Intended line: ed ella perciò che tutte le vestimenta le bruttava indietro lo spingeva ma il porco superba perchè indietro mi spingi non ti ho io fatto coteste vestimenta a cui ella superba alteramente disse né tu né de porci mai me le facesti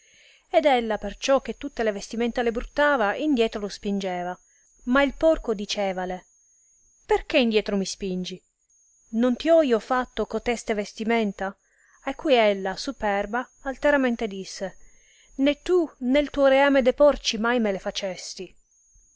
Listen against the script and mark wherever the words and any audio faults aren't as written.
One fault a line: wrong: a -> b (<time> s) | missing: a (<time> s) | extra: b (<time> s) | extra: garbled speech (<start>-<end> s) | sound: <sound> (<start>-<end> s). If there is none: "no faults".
wrong: superba -> dicevale (5.5 s)
extra: tuo reame (16.3 s)